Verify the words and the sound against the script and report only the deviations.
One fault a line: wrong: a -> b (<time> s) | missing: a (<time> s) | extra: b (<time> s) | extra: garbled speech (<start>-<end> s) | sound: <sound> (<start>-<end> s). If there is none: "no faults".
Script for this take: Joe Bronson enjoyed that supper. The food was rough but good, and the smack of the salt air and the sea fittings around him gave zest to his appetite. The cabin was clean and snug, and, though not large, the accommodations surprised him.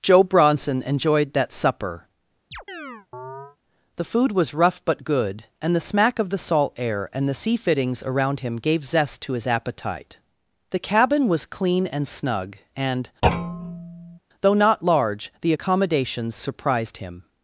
sound: chirp (2.5-3.6 s)
sound: thud (13.2-14.2 s)